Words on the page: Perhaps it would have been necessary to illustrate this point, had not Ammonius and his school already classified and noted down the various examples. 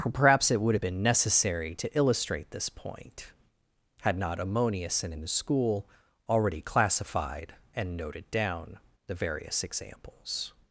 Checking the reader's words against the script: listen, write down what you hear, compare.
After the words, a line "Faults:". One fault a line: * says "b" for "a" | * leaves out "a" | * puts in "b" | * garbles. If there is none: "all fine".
Perhaps it would have been necessary to illustrate this point, had not Ammonius and his school already classified and noted down the various examples.
Faults:
all fine